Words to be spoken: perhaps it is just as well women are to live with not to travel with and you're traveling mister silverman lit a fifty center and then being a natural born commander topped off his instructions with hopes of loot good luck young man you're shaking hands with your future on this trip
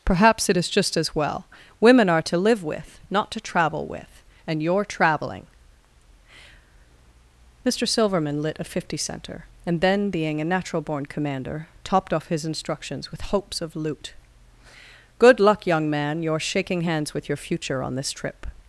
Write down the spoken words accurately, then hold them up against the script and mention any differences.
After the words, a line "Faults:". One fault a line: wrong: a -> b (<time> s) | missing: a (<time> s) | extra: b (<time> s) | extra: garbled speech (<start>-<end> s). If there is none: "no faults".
perhaps it is just as well women are to live with not to travel with and you're traveling mister silverman lit a fifty center and then being a natural born commander topped off his instructions with hopes of loot good luck young man you're shaking hands with your future on this trip
Faults:
no faults